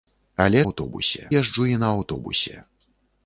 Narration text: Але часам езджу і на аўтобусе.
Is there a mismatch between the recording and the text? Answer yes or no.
yes